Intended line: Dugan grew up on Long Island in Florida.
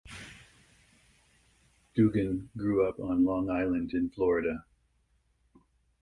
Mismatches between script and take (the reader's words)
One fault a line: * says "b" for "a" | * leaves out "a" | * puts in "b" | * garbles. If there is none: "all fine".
all fine